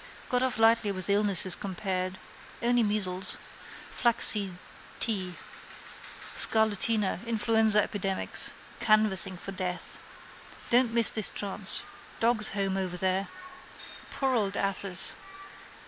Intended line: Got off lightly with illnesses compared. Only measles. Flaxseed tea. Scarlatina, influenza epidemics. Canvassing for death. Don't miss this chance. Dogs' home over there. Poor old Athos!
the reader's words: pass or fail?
pass